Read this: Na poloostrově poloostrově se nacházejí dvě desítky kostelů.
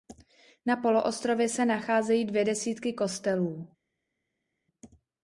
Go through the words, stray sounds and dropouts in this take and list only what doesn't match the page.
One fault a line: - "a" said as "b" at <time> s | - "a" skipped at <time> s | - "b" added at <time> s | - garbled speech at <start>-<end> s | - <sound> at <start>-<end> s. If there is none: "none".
- "poloostrově" skipped at 1.5 s